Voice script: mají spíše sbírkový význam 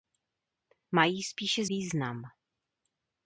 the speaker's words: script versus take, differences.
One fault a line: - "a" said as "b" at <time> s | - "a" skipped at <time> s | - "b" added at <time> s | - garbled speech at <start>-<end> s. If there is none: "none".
- "sbírkový" skipped at 1.6 s